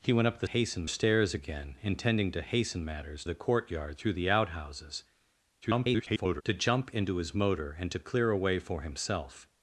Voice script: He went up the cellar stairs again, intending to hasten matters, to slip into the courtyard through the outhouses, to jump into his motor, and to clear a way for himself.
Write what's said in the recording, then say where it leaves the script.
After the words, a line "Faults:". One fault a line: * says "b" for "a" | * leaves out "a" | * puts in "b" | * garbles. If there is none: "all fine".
He went up the hasten stairs again, intending to hasten matters, the courtyard through the outhouses, [garbled] to jump into his motor, and to clear a way for himself.
Faults:
* says "hasten" for "cellar"
* leaves out "to slip into"
* garbles